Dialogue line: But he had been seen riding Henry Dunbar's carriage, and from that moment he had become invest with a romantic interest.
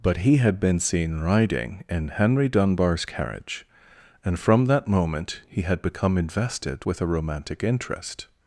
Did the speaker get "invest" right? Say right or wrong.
wrong